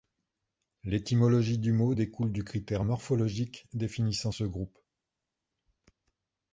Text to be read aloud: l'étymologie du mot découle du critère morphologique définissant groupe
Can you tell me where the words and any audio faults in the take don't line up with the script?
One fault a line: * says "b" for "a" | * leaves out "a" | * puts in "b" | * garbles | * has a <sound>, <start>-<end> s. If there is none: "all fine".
* puts in "ce"